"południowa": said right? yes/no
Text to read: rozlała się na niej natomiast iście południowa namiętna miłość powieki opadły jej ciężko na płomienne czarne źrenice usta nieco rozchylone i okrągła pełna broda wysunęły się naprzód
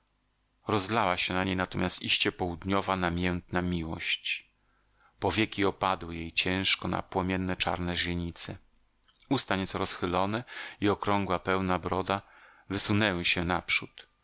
yes